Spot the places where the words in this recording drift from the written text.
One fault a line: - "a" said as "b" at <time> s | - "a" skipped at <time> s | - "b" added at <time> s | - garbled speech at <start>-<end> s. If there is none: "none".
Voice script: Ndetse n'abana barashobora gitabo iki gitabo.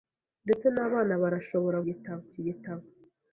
none